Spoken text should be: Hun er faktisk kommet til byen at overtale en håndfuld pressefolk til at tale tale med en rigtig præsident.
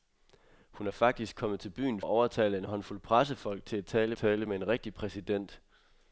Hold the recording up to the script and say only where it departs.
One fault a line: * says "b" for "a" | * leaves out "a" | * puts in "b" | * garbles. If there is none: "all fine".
all fine